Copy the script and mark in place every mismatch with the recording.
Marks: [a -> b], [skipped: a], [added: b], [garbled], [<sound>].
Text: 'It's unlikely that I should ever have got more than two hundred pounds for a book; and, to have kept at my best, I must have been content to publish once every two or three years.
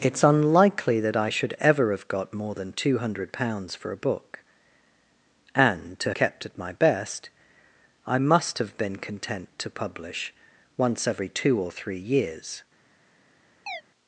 'It's unlikely that I should ever have got more than two hundred pounds for a book; and, to [skipped: have] kept at my best, I must have been content to publish once every two or three years. [chirp]